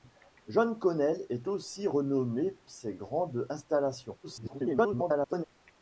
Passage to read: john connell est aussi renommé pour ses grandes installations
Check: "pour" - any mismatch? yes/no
yes